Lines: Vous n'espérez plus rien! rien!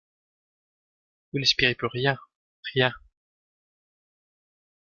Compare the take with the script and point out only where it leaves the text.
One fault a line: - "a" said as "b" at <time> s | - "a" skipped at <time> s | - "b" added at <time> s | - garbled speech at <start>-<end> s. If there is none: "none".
none